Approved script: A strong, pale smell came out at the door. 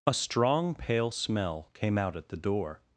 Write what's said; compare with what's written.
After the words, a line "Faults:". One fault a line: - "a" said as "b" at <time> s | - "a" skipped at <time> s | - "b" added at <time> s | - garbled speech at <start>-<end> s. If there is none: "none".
A strong, pale smell came out at the door.
Faults:
none